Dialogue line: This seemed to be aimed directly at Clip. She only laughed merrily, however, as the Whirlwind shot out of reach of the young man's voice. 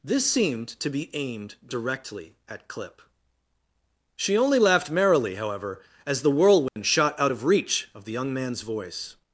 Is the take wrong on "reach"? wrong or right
right